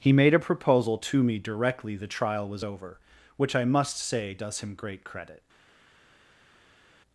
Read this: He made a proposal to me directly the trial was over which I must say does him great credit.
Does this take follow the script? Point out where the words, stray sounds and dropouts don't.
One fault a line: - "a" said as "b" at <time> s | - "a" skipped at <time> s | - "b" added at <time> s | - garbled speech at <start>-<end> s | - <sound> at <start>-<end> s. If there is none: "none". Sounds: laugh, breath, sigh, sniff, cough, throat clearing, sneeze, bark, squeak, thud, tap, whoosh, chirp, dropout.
none